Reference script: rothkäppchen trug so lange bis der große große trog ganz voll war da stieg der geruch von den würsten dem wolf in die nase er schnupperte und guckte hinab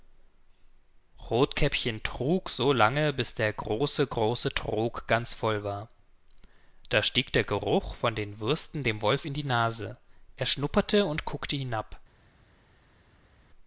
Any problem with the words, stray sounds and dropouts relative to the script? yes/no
no